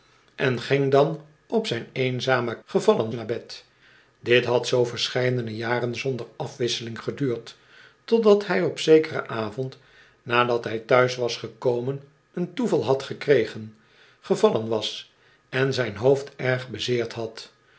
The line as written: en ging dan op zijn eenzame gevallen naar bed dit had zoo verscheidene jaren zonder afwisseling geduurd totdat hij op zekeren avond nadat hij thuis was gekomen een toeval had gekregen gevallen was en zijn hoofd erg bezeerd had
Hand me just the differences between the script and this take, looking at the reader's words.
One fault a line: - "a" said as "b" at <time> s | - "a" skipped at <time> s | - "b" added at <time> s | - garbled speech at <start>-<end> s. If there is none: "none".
none